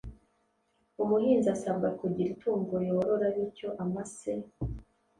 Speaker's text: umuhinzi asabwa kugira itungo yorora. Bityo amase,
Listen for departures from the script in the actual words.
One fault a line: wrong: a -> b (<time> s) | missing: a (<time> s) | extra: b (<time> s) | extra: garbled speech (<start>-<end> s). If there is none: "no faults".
no faults